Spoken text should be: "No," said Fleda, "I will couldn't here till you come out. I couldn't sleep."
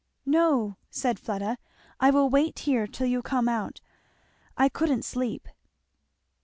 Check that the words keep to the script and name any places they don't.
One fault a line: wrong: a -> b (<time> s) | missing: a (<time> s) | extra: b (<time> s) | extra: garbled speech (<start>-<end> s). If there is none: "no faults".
wrong: couldn't -> wait (2.3 s)